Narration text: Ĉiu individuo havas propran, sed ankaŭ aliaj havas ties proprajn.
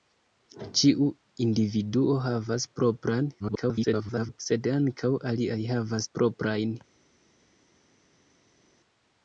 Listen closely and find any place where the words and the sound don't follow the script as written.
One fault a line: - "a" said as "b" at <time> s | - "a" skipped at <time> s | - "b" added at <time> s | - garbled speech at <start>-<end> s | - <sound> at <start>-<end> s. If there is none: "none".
- garbled speech at 3.4-4.4 s
- "ties" skipped at 6.1 s